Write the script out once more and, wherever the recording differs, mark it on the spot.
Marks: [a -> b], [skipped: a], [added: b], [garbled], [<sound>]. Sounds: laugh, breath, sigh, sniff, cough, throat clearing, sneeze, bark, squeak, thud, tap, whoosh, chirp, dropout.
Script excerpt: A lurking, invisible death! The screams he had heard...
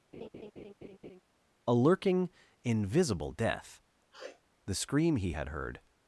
[laugh] A lurking, invisible death! [sniff] The [screams -> scream] he had heard...